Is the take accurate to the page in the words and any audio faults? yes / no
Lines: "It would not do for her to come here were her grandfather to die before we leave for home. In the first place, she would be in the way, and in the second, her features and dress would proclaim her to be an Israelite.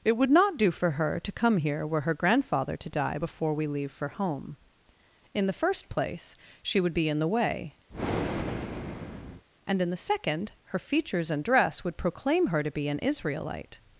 no